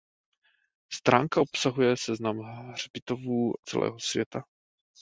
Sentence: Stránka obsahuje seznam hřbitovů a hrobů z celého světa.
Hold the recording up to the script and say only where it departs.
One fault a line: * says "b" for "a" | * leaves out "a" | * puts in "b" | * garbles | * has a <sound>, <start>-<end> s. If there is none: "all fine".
* leaves out "a hrobů z"